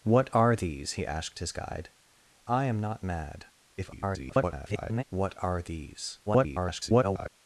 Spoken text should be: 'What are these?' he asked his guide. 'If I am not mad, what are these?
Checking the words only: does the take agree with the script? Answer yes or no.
no